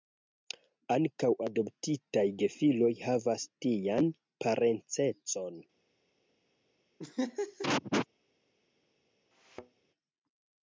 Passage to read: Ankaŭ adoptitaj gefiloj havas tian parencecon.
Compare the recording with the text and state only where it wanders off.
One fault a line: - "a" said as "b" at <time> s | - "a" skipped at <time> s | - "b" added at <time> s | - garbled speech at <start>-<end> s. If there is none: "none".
none